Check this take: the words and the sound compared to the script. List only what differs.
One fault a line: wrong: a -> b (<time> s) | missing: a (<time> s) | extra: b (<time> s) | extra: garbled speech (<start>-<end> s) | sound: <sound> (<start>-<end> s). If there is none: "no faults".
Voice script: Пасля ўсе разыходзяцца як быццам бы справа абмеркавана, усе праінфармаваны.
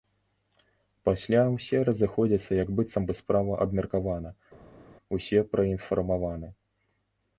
no faults